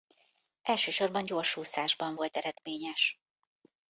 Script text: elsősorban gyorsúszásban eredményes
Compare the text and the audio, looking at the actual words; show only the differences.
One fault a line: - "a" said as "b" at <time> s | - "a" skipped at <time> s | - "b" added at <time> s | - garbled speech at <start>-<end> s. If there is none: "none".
- "volt" added at 2.1 s